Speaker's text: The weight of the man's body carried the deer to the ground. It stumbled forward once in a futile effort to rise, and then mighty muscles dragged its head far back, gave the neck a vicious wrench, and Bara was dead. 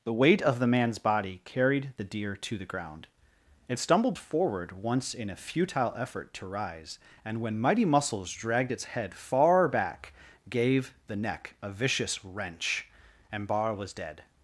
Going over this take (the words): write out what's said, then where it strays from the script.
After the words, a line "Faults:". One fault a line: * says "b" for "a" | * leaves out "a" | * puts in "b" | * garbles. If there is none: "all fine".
The weight of the man's body carried the deer to the ground. It stumbled forward once in a futile effort to rise, and when mighty muscles dragged its head far back, gave the neck a vicious wrench, and Bara was dead.
Faults:
* says "when" for "then"